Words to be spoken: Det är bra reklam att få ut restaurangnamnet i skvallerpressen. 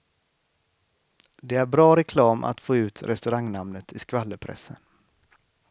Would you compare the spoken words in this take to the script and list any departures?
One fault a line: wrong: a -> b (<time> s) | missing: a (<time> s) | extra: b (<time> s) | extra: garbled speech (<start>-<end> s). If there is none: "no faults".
no faults